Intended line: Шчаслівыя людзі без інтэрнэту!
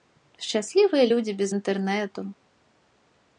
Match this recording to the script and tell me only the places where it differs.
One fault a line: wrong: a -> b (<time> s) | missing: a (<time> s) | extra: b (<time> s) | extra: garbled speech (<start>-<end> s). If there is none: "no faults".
no faults